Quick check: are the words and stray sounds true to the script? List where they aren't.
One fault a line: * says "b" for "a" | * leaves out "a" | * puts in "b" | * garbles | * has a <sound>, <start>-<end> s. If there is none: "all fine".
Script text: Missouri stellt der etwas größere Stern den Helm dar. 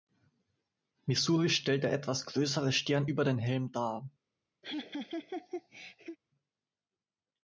* puts in "über"
* has a laugh, 4.6-6.2 s